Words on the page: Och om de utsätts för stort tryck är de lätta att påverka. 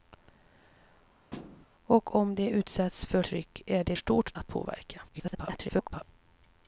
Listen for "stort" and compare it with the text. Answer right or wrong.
wrong